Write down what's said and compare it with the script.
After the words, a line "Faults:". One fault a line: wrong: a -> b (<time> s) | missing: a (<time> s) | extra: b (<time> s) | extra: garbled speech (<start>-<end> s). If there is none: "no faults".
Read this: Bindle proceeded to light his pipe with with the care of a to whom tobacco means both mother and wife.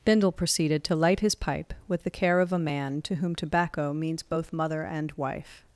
Bindle proceeded to light his pipe with the care of a man to whom tobacco means both mother and wife.
Faults:
missing: with (2.0 s)
extra: man (2.6 s)